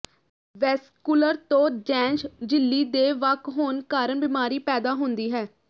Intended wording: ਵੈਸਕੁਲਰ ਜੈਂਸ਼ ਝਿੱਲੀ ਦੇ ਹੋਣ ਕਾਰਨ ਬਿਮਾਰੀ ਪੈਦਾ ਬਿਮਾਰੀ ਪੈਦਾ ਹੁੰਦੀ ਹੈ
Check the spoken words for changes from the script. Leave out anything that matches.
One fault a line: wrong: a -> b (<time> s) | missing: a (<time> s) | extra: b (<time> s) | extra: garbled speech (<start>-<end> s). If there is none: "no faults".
extra: ਤੋਂ (1.5 s)
extra: ਵੱਖ (3.2 s)
missing: ਬਿਮਾਰੀ ਪੈਦਾ (4.9 s)